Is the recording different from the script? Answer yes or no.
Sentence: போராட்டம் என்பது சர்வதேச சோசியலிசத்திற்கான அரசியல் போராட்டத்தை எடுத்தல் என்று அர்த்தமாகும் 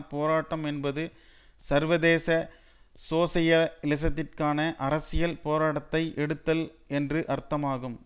no